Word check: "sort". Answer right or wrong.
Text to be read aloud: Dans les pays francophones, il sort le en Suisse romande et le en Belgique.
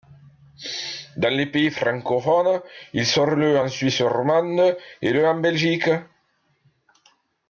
right